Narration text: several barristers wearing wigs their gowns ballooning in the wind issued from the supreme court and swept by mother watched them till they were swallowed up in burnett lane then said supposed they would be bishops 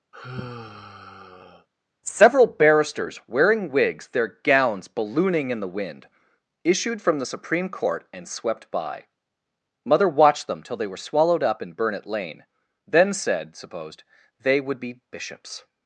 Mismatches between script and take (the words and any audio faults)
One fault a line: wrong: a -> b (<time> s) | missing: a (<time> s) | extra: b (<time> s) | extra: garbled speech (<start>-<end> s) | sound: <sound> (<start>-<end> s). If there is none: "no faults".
sound: sigh (0.1-1.7 s)